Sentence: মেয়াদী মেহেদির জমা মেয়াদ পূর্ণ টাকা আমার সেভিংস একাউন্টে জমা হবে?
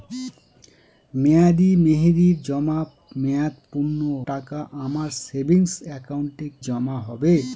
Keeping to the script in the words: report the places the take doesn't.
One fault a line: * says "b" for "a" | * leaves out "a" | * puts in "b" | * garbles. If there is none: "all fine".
all fine